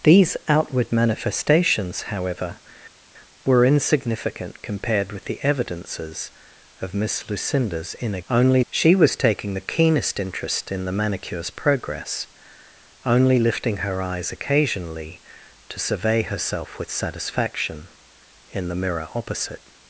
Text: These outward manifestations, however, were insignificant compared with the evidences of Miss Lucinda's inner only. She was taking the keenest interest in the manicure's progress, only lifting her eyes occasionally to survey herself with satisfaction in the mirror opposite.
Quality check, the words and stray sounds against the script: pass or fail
pass